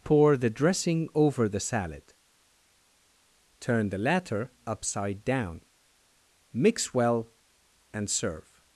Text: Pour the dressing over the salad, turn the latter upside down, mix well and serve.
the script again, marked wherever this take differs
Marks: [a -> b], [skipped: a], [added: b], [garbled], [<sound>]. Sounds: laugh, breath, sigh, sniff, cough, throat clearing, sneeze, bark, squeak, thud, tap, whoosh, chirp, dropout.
Pour the dressing over the salad, turn the latter upside down, mix well and serve.